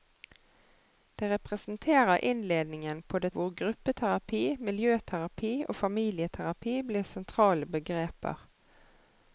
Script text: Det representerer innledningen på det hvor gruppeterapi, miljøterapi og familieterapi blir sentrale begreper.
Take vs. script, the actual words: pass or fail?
pass